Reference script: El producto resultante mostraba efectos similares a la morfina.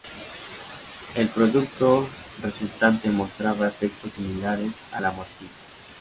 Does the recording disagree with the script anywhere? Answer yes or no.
no